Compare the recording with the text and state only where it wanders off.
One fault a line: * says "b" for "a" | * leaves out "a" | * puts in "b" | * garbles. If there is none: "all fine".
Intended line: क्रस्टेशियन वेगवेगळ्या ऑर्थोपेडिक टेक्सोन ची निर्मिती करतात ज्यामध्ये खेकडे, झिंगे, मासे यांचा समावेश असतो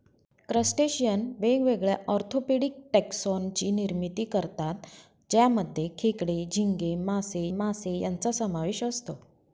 * puts in "मासे"